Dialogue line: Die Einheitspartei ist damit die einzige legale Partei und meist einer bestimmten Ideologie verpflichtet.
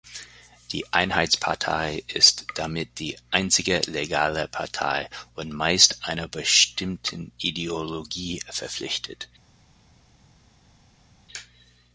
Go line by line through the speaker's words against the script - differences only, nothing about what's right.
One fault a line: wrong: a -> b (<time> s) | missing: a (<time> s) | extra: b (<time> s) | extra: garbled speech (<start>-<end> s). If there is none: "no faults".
no faults